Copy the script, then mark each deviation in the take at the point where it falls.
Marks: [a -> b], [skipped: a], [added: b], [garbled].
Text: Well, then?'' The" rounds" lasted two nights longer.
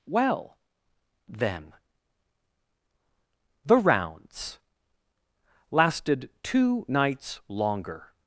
Well, then?'' The" rounds" lasted two nights longer.